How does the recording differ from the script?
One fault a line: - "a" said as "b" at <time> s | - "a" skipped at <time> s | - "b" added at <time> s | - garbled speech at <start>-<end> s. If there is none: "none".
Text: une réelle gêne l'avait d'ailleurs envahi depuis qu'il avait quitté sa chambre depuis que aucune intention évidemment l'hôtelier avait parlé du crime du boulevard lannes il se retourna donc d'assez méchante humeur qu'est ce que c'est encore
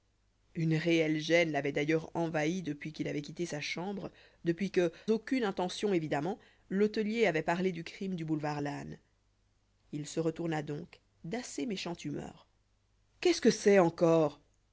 none